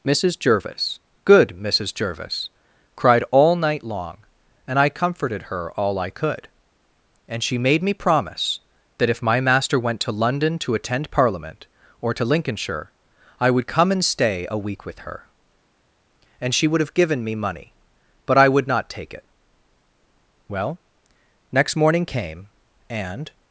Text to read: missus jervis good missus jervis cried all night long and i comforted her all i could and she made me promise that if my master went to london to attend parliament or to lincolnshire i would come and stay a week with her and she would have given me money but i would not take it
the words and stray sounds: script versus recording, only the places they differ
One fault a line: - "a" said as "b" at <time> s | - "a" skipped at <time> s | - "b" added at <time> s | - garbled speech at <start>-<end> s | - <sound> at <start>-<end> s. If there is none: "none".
- "well next morning came and" added at 20.5 s